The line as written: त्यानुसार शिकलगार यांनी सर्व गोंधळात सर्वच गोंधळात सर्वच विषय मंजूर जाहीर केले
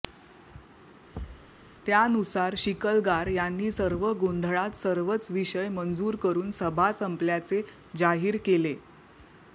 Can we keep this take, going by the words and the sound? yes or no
no